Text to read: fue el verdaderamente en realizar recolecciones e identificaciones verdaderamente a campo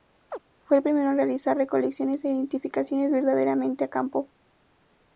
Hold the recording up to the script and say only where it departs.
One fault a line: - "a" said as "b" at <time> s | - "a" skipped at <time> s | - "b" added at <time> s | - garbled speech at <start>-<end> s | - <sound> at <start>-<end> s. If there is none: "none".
- chirp at 0.3-0.4 s
- "verdaderamente" said as "primero" at 0.8 s